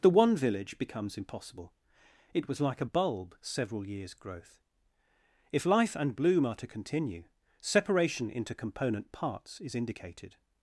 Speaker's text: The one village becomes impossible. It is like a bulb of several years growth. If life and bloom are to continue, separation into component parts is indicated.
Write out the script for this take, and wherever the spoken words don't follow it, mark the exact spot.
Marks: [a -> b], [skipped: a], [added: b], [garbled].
The one village becomes impossible. It [is -> was] like a bulb [skipped: of] several years growth. If life and bloom are to continue, separation into component parts is indicated.